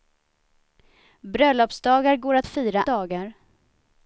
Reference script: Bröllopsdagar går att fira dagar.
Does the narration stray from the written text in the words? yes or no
no